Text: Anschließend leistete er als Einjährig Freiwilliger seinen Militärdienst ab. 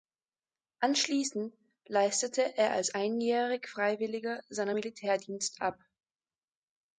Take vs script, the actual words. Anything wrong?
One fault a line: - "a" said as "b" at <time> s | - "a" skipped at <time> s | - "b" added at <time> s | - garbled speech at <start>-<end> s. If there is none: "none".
none